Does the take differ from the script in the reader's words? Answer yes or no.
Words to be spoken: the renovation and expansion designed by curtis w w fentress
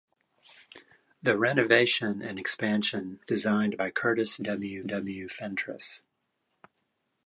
no